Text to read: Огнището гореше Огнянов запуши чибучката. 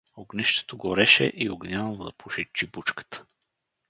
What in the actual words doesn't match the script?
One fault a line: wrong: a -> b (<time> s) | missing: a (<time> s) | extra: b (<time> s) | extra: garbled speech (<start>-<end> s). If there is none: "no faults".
extra: и (1.3 s)